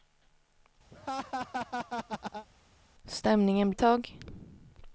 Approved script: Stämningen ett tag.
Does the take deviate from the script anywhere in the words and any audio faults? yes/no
yes